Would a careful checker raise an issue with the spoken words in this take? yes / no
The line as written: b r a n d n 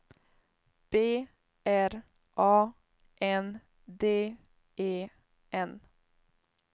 yes